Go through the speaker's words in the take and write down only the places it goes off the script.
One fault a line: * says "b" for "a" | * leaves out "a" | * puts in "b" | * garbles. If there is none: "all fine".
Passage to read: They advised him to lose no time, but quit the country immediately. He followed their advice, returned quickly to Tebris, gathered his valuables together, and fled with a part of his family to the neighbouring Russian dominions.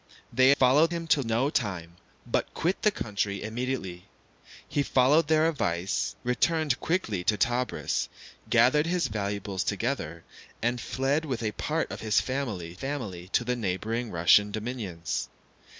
* says "followed" for "advised"
* leaves out "lose"
* puts in "family"